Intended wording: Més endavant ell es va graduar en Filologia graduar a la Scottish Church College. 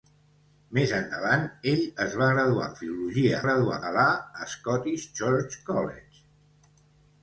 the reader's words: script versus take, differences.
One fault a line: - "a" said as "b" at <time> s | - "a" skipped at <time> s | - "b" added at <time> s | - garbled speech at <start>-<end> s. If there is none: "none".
none